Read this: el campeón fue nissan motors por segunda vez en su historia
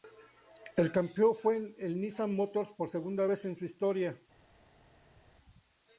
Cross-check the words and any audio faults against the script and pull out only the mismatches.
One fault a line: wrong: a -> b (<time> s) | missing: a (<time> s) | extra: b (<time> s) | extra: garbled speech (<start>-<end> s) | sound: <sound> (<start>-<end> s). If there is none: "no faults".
extra: el (1.8 s)